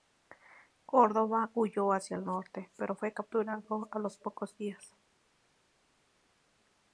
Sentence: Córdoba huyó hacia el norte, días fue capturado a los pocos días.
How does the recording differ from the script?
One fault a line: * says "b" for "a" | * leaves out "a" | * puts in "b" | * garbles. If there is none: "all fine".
* says "pero" for "días"